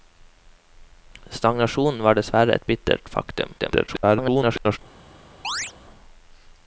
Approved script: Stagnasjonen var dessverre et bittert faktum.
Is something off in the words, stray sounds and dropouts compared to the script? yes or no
yes